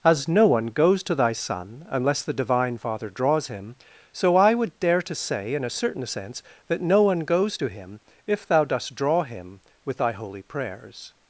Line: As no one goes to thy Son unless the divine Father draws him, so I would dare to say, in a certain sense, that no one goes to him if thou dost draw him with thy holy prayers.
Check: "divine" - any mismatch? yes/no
no